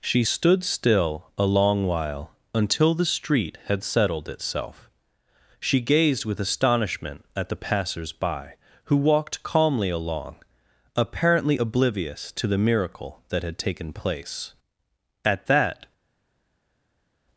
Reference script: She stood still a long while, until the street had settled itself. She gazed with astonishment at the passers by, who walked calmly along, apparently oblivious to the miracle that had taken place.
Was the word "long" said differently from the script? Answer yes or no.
no